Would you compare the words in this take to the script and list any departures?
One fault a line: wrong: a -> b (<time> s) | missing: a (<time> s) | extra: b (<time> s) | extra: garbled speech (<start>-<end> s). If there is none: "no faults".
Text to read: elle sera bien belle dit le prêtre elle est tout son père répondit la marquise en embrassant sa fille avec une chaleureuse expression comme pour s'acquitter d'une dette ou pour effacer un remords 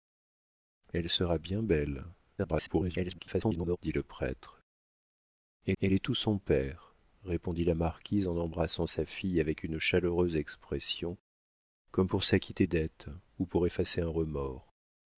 extra: garbled speech (2.4-3.8 s)
extra: elle (5.8 s)
missing: d'une (12.7 s)